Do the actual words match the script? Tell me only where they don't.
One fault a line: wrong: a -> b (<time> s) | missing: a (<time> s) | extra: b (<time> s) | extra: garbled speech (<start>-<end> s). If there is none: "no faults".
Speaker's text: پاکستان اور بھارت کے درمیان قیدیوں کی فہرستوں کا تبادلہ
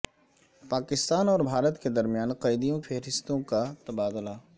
missing: کی (2.8 s)